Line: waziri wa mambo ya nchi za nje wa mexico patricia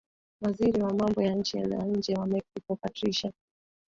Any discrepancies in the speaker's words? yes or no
no